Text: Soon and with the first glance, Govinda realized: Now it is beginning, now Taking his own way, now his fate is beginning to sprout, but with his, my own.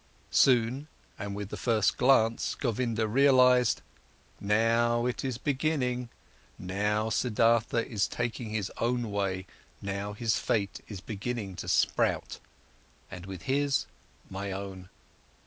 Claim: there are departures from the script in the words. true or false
true